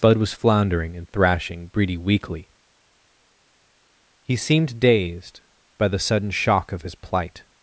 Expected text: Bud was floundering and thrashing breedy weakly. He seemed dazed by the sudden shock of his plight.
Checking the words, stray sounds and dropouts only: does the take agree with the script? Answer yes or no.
yes